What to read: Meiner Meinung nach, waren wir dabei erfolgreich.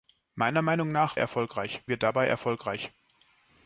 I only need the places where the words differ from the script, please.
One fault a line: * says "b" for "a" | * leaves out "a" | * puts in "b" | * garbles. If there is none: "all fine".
* says "erfolgreich" for "waren"